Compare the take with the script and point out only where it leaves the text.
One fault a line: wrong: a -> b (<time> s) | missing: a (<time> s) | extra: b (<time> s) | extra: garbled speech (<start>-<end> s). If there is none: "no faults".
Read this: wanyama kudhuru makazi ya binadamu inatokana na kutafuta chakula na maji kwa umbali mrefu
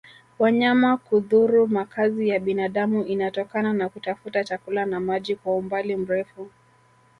no faults